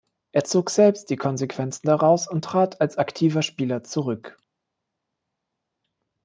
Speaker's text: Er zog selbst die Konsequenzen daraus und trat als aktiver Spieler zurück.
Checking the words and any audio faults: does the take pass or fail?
pass